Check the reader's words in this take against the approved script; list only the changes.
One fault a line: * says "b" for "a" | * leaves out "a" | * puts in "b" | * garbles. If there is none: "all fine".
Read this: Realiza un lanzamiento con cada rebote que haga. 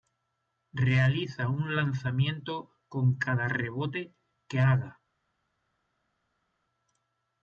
all fine